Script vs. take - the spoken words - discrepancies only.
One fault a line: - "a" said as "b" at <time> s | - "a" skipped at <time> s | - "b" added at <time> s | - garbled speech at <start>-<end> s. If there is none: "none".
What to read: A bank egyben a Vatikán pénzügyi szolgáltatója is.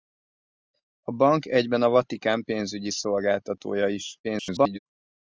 - garbled speech at 4.2-4.8 s